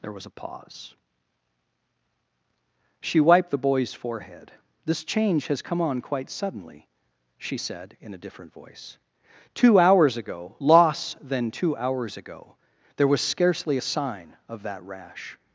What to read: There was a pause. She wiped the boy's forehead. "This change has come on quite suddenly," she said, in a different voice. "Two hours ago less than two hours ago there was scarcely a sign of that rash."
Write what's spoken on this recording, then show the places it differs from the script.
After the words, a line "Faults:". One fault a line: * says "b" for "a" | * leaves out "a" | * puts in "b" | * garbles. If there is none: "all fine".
There was a pause. She wiped the boy's forehead. "This change has come on quite suddenly," she said, in a different voice. "Two hours ago loss than two hours ago there was scarcely a sign of that rash."
Faults:
* says "loss" for "less"